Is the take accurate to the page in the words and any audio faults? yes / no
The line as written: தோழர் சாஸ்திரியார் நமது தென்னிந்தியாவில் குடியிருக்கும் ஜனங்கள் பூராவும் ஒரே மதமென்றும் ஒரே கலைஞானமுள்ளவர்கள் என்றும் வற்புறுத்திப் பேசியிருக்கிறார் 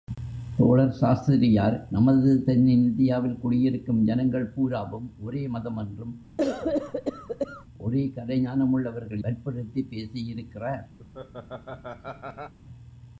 no